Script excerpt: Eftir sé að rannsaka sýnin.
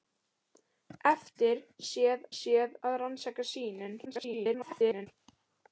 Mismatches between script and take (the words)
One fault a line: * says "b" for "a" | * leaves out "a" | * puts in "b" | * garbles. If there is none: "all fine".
* puts in "sé"
* garbles